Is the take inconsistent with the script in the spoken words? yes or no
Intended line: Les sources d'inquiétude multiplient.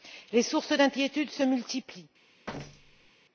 yes